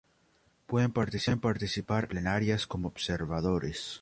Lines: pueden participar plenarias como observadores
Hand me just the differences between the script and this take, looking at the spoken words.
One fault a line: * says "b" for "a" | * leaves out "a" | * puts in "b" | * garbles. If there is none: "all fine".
all fine